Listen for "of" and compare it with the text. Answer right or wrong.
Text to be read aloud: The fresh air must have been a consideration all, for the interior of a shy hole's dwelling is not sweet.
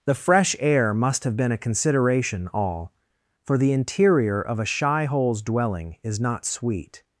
right